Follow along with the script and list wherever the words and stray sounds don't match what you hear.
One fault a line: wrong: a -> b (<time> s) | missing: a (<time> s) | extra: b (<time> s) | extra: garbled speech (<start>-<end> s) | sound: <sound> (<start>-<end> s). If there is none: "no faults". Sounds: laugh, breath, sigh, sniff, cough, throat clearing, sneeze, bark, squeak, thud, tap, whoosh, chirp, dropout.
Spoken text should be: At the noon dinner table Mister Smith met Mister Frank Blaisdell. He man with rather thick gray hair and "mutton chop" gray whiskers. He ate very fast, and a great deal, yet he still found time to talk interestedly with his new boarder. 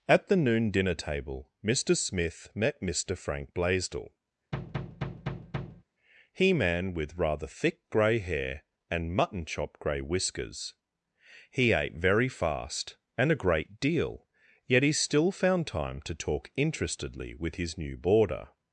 sound: thud (4.5-5.8 s)